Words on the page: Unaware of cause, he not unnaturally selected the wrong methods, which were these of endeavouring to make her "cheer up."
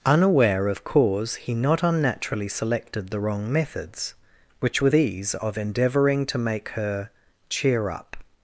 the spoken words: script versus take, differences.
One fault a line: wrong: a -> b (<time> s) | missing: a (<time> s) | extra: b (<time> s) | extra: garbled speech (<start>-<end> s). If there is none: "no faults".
no faults